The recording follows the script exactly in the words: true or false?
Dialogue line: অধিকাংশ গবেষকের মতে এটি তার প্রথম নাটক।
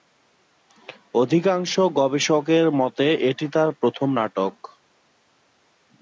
true